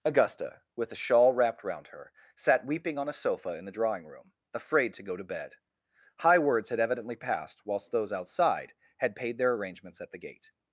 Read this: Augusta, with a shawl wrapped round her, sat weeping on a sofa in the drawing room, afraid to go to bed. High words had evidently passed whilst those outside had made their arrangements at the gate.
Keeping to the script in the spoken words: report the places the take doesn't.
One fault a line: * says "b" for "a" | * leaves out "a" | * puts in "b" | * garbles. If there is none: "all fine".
* says "paid" for "made"